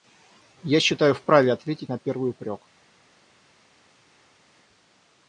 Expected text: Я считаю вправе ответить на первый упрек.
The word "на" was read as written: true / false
true